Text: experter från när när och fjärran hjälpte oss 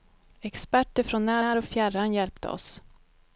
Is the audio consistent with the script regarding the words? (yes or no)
yes